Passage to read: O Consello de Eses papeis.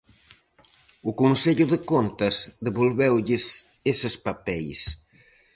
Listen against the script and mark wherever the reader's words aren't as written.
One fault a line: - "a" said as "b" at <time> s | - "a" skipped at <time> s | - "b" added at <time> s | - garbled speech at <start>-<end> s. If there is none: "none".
- "Contas devolveulles" added at 1.9 s